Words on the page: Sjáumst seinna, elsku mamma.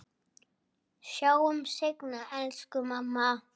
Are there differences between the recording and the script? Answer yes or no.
no